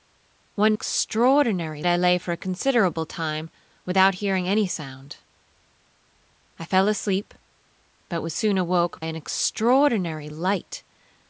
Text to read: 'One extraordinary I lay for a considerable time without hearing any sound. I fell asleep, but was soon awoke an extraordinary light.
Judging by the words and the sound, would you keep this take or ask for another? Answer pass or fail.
pass